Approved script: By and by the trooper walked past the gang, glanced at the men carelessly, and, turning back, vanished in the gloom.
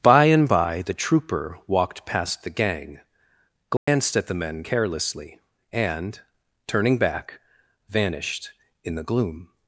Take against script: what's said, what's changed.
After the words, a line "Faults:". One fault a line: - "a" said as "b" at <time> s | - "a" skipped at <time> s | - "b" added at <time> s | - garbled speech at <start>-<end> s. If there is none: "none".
By and by the trooper walked past the gang, glanced at the men carelessly, and, turning back, vanished in the gloom.
Faults:
none